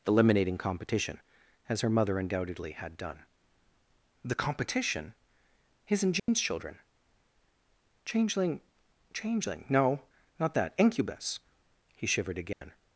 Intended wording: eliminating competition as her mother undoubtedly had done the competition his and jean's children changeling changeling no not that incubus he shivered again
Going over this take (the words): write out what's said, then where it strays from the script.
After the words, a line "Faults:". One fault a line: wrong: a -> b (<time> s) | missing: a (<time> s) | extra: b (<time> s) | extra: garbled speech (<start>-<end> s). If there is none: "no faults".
eliminating competition as her mother undoubtedly had done the competition his and jean's children changeling changeling no not that incubus he shivered again
Faults:
no faults